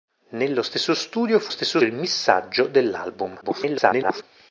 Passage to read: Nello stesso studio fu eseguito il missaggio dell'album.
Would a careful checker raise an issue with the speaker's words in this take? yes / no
yes